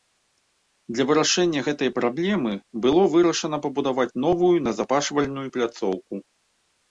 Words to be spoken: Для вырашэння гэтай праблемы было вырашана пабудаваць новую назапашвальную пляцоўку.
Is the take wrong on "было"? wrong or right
right